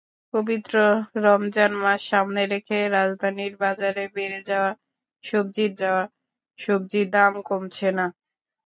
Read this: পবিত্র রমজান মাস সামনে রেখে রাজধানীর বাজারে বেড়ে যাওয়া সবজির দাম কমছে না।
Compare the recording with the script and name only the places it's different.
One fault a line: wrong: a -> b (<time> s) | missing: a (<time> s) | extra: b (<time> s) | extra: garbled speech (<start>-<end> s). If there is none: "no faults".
extra: যাওয়া সবজির (5.8 s)